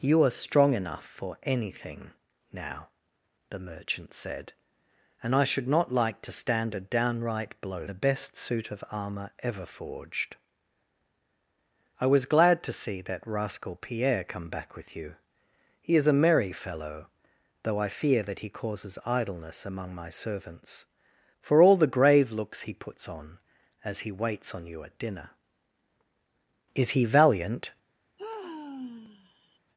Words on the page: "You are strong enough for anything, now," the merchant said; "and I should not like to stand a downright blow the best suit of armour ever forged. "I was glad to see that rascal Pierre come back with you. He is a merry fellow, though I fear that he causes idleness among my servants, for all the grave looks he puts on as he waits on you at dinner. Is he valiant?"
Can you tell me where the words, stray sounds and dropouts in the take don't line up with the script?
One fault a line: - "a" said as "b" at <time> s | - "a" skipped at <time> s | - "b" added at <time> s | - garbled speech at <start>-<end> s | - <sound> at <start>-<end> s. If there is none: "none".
- sigh at 28.2-29.6 s